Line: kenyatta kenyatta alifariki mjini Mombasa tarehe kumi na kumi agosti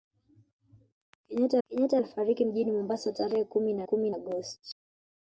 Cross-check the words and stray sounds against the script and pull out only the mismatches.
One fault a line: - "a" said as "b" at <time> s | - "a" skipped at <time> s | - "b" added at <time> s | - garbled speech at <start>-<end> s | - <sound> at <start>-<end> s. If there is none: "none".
none